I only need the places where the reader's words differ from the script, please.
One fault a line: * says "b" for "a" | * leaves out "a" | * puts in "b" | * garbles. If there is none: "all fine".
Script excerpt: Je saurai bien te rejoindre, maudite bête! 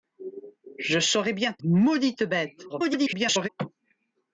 * leaves out "rejoindre"
* garbles